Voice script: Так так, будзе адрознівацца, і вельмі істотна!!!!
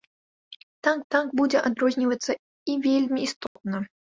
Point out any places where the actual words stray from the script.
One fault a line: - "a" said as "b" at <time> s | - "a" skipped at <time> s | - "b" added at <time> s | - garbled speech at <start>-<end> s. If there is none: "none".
none